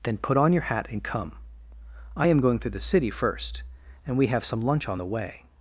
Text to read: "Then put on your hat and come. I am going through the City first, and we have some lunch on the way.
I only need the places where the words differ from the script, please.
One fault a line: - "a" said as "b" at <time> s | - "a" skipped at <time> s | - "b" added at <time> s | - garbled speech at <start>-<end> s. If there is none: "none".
none